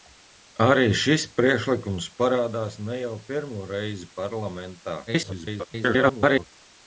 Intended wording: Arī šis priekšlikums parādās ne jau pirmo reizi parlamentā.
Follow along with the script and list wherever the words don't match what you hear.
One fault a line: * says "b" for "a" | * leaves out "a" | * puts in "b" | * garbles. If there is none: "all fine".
* garbles